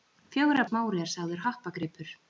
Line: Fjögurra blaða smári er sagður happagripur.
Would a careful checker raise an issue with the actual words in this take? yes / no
yes